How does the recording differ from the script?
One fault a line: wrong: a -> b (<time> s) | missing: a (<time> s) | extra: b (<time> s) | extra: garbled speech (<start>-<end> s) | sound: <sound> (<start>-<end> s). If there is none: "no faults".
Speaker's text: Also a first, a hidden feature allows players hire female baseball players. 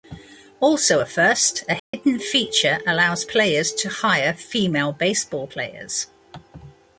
sound: dropout (1.8-1.9 s)
extra: to (3.7 s)